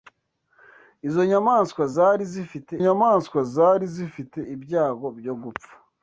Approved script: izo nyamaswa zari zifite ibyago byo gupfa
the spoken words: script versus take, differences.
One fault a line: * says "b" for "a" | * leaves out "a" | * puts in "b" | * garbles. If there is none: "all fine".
* puts in "nyamaswa zari zifite"